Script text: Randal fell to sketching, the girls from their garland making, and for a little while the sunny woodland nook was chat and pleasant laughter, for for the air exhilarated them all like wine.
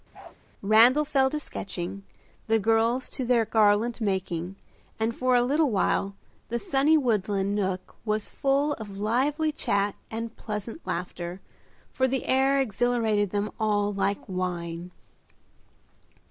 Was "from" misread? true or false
true